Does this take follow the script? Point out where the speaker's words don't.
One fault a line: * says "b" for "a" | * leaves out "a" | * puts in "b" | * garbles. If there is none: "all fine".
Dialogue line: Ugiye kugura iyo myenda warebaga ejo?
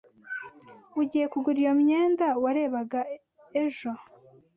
all fine